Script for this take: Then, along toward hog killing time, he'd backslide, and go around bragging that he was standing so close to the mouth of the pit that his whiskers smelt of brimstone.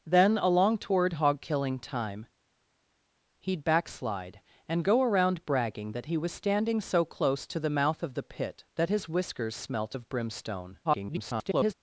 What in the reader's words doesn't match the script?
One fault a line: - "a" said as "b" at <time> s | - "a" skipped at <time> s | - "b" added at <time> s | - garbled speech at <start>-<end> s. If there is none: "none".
- garbled speech at 10.8-11.7 s